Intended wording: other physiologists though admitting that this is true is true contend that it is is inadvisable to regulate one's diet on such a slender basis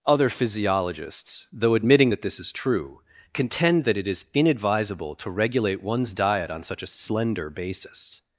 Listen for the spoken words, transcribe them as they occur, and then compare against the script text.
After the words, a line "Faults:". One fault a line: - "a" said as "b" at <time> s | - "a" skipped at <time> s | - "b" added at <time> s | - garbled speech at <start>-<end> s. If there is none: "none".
other physiologists though admitting that this is true contend that it is inadvisable to regulate one's diet on such a slender basis
Faults:
- "is true" skipped at 3.0 s
- "is" skipped at 4.3 s